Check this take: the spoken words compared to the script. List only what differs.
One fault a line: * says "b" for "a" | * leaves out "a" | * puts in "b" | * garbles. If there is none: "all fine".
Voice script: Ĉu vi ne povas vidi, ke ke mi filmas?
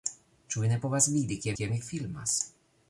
all fine